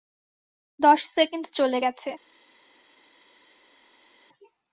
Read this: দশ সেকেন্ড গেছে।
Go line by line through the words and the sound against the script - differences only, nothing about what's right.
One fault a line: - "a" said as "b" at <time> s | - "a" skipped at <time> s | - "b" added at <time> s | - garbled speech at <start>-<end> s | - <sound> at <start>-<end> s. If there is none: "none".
- "চলে" added at 1.5 s